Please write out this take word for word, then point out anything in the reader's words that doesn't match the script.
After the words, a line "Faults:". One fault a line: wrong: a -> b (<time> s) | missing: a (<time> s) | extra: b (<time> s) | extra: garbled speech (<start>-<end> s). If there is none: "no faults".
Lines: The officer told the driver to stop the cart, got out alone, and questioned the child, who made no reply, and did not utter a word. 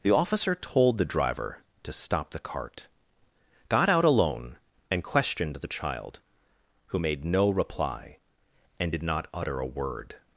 The officer told the driver to stop the cart, got out alone, and questioned the child, who made no reply, and did not utter a word.
Faults:
no faults